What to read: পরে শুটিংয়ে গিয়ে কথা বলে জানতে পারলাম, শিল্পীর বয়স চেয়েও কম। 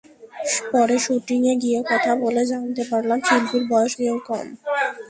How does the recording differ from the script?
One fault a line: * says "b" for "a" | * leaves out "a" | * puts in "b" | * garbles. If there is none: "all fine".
all fine